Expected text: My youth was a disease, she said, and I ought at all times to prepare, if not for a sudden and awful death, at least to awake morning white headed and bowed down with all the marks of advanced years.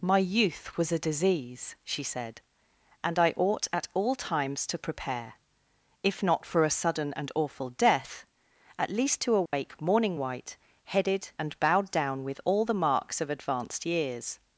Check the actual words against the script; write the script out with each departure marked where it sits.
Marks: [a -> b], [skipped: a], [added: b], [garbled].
My youth was a disease, she said, and I ought at all times to prepare, if not for a sudden and awful death, at least to awake morning white headed and bowed down with all the marks of advanced years.